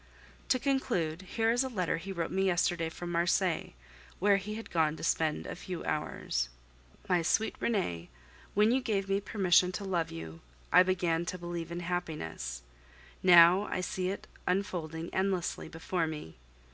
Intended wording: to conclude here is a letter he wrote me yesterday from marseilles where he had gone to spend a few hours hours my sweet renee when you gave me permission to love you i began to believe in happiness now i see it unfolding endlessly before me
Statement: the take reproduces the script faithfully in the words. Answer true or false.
false